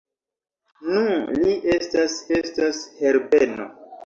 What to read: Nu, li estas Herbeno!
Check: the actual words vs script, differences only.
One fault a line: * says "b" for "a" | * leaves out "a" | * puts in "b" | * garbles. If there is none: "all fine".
* puts in "estas"